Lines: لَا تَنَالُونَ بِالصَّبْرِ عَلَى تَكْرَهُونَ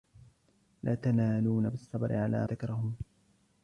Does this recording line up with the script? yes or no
yes